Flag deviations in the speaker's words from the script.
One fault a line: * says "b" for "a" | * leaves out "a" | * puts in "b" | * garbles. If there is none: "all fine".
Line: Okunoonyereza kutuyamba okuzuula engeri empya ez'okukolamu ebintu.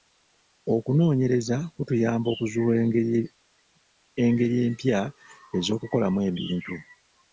all fine